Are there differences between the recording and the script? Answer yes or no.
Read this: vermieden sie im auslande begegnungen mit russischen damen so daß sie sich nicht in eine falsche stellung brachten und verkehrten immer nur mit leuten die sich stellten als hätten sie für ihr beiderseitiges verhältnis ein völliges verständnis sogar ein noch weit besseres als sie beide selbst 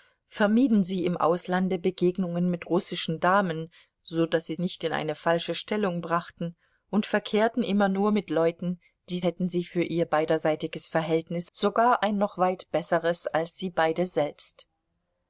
yes